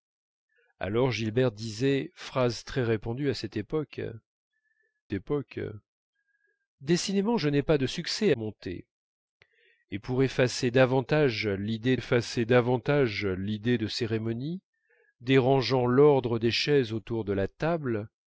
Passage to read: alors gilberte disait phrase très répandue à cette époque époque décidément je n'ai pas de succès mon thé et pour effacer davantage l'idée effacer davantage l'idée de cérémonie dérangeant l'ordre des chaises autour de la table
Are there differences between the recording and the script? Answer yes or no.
no